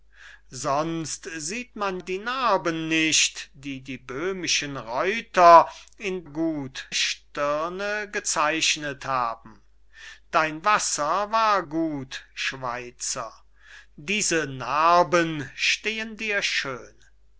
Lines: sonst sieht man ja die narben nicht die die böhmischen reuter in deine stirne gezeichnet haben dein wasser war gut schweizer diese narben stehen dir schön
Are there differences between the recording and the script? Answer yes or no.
yes